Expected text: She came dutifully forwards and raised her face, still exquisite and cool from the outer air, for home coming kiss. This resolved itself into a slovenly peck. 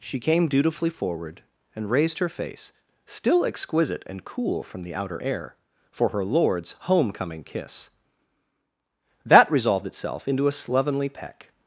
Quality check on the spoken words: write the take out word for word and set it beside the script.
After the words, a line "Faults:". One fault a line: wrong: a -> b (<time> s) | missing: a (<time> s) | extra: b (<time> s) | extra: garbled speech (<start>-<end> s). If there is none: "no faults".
She came dutifully forward and raised her face, still exquisite and cool from the outer air, for her lord's home coming kiss. That resolved itself into a slovenly peck.
Faults:
wrong: forwards -> forward (0.9 s)
extra: her lord's (6.1 s)
wrong: This -> That (9.3 s)